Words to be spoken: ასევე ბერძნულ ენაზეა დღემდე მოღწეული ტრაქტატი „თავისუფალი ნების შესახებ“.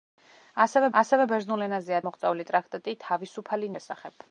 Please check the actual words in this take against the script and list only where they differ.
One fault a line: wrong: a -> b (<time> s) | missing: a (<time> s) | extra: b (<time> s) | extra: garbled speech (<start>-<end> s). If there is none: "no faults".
extra: ასევე (1.0 s)
missing: დღემდე (2.0 s)
missing: ნების (3.7 s)